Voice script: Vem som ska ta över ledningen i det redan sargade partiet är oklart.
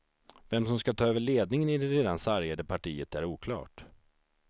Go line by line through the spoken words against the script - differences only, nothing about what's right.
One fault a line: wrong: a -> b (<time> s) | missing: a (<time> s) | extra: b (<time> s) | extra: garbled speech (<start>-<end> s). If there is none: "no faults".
no faults